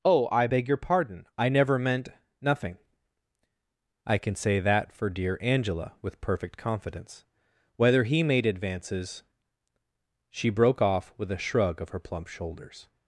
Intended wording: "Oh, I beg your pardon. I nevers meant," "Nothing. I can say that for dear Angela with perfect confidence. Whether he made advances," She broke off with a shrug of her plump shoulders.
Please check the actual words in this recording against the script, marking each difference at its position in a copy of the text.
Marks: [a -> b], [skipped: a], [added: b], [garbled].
"Oh, I beg your pardon. I [nevers -> never] meant," "Nothing. I can say that for dear Angela with perfect confidence. Whether he made advances," She broke off with a shrug of her plump shoulders.